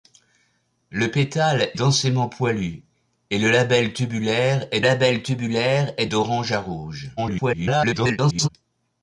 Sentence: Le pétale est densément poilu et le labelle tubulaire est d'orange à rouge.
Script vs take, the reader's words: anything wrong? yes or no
yes